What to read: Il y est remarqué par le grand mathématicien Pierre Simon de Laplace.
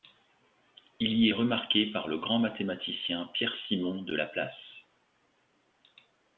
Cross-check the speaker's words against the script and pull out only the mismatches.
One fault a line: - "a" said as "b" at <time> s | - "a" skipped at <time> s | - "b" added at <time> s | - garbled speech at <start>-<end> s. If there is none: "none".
none